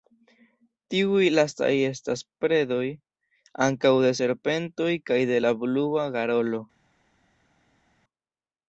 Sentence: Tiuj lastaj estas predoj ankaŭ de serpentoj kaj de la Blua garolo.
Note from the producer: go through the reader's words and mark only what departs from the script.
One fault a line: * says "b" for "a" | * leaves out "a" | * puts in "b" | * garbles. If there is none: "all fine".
all fine